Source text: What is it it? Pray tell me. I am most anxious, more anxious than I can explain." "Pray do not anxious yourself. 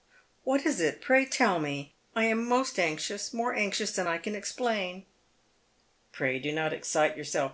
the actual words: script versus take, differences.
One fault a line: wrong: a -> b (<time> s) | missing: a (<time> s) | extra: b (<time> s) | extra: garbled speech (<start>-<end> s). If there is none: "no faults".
missing: it (1.0 s)
wrong: anxious -> excite (6.7 s)